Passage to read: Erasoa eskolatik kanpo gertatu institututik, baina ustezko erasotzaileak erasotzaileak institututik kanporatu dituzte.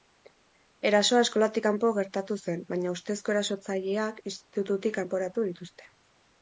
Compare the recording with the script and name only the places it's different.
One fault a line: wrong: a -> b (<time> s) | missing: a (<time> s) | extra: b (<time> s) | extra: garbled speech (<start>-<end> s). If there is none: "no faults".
wrong: institututik -> zen (2.4 s)
missing: erasotzaileak (4.3 s)